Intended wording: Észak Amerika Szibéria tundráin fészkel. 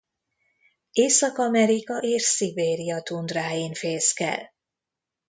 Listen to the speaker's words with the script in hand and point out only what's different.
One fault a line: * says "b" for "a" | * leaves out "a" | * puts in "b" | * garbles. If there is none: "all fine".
* puts in "és"